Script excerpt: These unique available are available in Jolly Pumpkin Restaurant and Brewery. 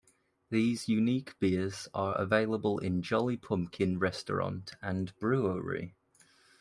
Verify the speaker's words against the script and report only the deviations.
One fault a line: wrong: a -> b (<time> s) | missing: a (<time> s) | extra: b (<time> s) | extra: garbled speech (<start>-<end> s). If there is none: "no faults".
wrong: available -> beers (1.4 s)